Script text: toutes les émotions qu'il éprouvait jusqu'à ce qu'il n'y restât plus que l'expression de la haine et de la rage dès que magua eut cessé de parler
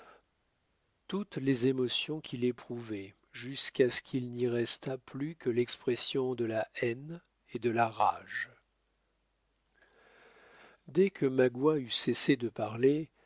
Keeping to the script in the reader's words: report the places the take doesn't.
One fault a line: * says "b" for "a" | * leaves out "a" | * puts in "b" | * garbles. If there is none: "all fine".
all fine